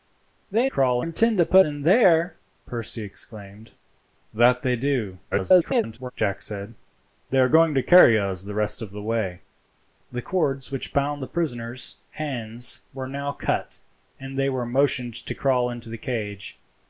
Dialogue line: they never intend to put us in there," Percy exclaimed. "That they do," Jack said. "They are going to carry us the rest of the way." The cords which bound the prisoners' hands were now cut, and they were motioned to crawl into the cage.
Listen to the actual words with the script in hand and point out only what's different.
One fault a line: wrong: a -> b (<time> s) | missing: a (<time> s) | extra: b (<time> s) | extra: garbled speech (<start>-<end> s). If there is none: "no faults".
wrong: never -> crawl (0.7 s)
missing: us (1.7 s)
extra: garbled speech (5.3-6.1 s)